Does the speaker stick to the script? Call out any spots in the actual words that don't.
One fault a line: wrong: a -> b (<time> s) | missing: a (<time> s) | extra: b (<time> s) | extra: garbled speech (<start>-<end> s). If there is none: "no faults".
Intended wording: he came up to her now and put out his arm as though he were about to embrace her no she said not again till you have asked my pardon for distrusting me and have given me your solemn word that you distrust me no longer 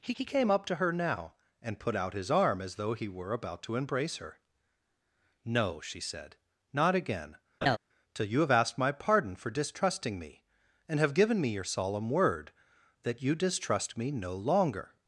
extra: he (0.1 s)